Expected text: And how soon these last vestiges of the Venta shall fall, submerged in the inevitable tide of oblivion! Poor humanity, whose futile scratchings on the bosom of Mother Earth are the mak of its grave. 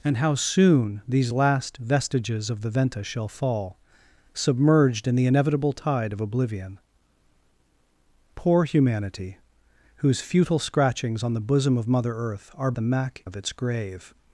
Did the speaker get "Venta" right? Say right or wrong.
right